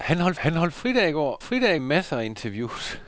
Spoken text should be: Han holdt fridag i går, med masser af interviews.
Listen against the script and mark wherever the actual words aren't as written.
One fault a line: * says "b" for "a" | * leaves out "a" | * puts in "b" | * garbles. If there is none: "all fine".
* puts in "han holdt"
* says "fridag" for "med"